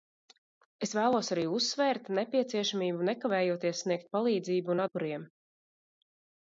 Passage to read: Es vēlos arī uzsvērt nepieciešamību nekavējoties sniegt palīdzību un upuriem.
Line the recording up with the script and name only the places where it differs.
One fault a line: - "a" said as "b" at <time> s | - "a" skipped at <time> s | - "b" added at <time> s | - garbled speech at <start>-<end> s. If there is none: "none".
none